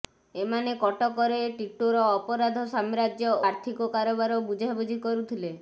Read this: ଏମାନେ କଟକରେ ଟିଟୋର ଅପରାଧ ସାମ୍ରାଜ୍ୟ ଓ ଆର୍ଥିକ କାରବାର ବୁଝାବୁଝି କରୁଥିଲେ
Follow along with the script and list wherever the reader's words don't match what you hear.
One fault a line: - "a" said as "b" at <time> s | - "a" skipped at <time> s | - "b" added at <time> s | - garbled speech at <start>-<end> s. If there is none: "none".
- "ଓ" skipped at 3.3 s